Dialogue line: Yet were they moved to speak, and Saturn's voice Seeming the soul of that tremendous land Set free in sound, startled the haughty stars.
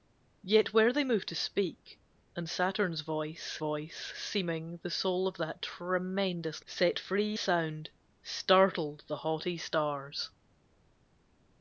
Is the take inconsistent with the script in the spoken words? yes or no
yes